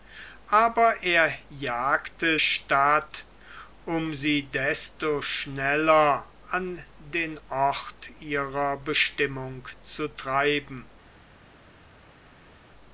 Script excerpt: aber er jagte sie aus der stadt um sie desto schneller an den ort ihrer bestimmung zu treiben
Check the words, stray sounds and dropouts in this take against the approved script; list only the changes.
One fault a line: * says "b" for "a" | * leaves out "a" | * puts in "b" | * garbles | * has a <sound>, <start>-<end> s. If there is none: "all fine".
* leaves out "sie aus der"